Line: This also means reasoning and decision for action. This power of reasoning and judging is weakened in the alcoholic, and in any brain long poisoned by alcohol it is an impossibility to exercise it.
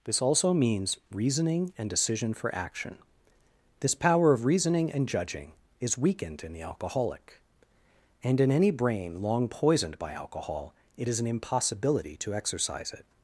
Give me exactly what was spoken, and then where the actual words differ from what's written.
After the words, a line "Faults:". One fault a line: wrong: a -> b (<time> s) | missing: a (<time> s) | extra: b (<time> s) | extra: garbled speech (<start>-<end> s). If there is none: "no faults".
This also means reasoning and decision for action. This power of reasoning and judging is weakened in the alcoholic, and in any brain long poisoned by alcohol it is an impossibility to exercise it.
Faults:
no faults